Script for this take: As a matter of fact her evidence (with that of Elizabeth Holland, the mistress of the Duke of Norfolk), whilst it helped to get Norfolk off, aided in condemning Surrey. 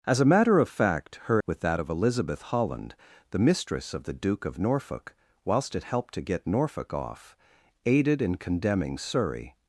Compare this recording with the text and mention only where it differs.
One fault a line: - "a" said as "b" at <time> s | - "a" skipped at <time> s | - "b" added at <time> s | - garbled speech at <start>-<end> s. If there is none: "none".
- "evidence" skipped at 1.4 s